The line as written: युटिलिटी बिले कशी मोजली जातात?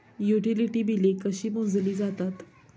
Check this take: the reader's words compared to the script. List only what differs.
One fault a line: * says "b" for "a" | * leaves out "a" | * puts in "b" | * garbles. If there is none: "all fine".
all fine